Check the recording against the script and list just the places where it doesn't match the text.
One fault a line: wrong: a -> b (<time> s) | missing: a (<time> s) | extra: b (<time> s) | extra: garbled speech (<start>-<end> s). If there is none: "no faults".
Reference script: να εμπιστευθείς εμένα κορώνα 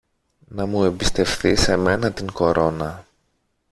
extra: μου (0.7 s)
extra: την (2.1 s)